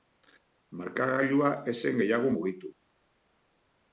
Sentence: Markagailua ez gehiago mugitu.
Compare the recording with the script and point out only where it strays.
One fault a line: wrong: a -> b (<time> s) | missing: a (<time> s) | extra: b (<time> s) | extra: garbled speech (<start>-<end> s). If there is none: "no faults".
extra: zen (1.8 s)